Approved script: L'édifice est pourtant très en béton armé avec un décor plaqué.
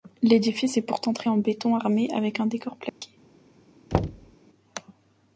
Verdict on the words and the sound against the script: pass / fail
fail